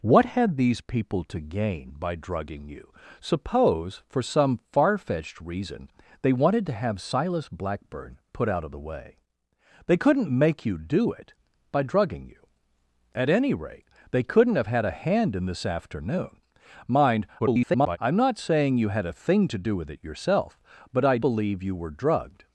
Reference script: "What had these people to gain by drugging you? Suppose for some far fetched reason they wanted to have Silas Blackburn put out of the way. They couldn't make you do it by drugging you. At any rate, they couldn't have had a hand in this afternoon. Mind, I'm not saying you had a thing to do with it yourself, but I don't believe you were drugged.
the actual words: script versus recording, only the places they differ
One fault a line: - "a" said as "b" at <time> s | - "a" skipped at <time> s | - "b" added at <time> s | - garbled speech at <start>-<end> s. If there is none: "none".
- garbled speech at 17.4-18.0 s
- "don't" skipped at 21.2 s